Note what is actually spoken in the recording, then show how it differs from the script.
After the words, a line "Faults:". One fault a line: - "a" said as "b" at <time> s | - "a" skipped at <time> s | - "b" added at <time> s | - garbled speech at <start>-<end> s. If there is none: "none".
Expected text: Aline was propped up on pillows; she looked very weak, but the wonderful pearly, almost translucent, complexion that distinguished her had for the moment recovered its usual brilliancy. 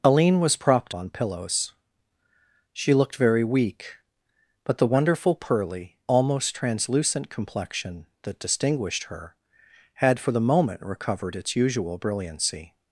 Aline was propped on pillows; she looked very weak, but the wonderful pearly, almost translucent, complexion that distinguished her had for the moment recovered its usual brilliancy.
Faults:
- "up" skipped at 0.9 s